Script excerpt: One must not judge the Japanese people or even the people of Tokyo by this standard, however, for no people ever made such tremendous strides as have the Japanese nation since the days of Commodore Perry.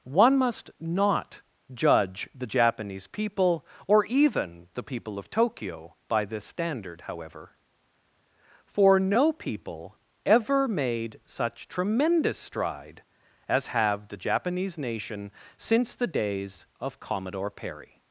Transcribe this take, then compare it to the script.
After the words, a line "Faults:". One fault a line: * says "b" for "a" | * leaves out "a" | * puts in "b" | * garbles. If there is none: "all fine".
One must not judge the Japanese people or even the people of Tokyo by this standard, however, for no people ever made such tremendous stride as have the Japanese nation since the days of Commodore Perry.
Faults:
* says "stride" for "strides"